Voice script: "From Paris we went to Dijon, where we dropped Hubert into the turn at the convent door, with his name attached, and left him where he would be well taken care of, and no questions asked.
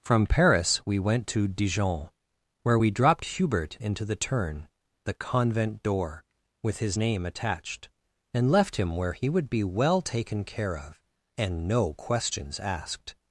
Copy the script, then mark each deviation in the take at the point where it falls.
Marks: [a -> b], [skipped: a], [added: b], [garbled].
"From Paris we went to Dijon, where we dropped Hubert into the turn [skipped: at] the convent door, with his name attached, and left him where he would be well taken care of, and no questions asked.